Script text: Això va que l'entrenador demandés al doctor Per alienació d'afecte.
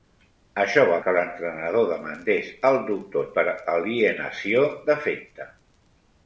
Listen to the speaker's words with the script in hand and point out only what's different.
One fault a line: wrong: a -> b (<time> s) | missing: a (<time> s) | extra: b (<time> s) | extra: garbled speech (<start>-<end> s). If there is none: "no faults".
no faults